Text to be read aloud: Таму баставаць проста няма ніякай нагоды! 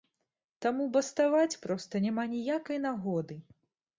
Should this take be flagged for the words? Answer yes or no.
no